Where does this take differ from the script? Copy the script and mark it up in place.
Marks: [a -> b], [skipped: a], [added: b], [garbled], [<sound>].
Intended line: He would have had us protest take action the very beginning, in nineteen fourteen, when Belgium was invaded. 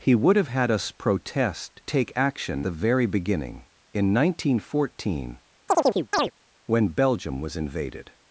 He would have had us protest take action the very beginning, in nineteen fourteen, [chirp] when Belgium was invaded.